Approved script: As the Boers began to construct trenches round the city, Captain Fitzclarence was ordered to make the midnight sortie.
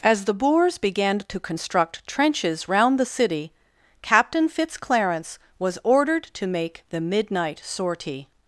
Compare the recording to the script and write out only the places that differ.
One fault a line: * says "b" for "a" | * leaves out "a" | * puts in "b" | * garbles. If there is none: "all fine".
all fine